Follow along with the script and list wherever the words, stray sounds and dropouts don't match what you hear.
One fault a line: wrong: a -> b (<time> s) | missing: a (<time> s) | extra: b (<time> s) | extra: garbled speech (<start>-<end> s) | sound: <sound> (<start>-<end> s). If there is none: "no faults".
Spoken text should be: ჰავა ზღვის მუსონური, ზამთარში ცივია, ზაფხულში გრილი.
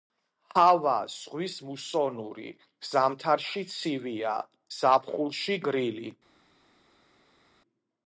no faults